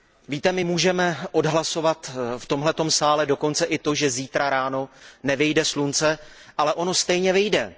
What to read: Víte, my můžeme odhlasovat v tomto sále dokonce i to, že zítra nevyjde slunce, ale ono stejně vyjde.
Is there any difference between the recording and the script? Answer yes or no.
yes